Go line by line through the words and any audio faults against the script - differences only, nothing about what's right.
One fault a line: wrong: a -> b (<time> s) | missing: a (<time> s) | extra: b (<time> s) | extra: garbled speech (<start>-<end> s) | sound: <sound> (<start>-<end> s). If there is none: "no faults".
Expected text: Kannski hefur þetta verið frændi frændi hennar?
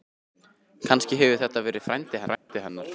sound: dropout (2.3-2.5 s)